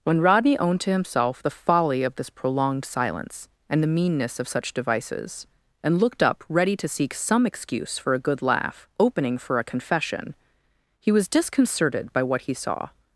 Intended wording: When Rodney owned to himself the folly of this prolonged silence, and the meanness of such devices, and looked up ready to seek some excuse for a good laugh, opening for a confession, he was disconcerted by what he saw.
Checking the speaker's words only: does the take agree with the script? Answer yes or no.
yes